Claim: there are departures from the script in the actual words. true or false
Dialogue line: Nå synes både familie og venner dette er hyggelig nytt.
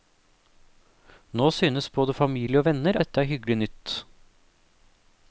false